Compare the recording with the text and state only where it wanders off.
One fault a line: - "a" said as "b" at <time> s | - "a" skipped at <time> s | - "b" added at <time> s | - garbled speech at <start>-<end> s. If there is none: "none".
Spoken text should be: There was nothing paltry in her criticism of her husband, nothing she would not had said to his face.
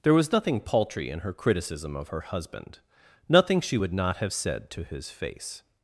- "had" said as "have" at 4.2 s